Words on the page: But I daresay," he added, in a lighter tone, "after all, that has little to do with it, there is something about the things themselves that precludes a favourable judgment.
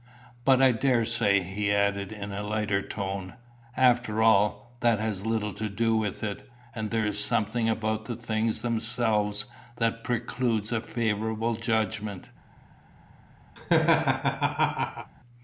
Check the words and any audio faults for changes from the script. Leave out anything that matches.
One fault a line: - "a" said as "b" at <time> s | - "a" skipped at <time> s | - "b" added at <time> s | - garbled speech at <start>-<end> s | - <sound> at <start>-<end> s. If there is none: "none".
- "and" added at 6.7 s
- laugh at 13.6-15.1 s